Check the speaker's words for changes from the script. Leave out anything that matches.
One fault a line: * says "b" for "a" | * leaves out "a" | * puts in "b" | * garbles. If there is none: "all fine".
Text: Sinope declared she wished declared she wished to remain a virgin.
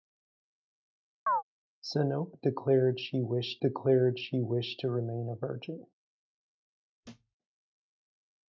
all fine